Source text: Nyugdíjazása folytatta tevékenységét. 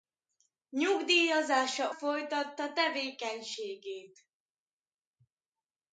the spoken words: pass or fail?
pass